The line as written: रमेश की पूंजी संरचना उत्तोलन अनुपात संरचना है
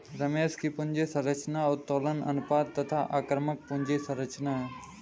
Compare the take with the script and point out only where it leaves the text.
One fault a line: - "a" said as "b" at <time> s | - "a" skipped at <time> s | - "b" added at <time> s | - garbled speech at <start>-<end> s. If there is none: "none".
- "तथा आक्रामक पूंजी" added at 2.8 s